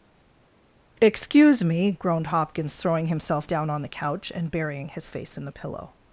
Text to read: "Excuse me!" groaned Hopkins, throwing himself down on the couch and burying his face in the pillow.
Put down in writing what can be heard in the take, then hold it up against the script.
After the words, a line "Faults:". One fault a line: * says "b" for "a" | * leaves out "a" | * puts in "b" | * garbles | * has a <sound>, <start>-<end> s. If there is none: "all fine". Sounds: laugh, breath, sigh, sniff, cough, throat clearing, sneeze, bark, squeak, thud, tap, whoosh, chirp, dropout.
"Excuse me!" groaned Hopkins, throwing himself down on the couch and burying his face in the pillow.
Faults:
all fine